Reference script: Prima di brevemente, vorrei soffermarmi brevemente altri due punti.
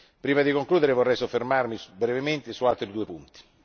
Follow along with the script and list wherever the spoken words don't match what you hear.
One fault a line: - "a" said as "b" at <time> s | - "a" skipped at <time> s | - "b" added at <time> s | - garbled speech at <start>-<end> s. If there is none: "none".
- "brevemente" said as "concludere" at 0.5 s
- "su" added at 2.5 s